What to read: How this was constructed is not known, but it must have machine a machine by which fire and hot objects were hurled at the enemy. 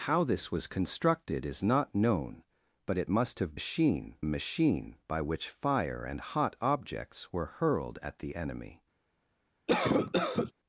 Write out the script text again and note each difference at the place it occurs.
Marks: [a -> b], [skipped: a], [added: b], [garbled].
How this was constructed is not known, but it must have machine a machine by which fire and hot objects were hurled at the enemy.